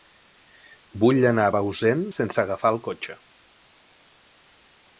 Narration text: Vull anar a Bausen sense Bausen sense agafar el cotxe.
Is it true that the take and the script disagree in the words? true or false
true